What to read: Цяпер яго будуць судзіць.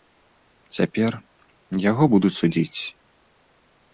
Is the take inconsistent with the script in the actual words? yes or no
no